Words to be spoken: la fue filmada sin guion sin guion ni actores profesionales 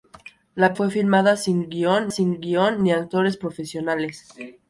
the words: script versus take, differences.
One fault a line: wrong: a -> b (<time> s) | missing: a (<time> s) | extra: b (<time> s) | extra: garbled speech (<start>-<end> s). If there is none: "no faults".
no faults